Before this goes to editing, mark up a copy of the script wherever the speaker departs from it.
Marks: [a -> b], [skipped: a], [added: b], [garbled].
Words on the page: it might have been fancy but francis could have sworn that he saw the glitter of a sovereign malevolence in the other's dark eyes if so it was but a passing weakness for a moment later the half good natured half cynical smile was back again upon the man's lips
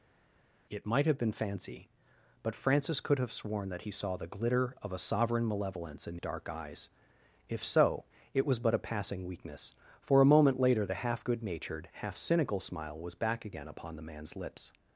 it might have been fancy but francis could have sworn that he saw the glitter of a sovereign malevolence in [skipped: the other's] dark eyes if so it was but a passing weakness for a moment later the half good natured half cynical smile was back again upon the man's lips